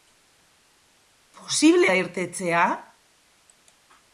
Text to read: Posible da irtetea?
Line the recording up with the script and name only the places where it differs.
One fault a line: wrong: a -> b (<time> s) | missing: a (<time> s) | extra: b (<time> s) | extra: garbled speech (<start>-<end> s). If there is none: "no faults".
no faults